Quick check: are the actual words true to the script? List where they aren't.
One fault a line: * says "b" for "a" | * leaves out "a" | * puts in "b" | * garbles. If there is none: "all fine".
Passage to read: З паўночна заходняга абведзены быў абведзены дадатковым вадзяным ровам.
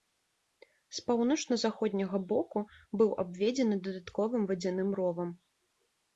* says "боку" for "абведзены"